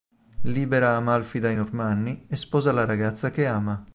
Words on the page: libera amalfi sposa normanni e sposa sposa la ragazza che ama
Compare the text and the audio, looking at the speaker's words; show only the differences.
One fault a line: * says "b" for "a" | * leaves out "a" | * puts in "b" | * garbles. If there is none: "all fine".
* says "dai" for "sposa"
* leaves out "sposa"